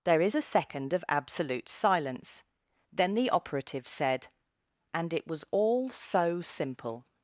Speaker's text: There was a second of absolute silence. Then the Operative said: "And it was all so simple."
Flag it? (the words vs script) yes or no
yes